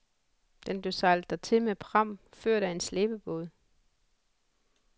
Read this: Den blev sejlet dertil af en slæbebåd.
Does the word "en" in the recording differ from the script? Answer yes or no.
no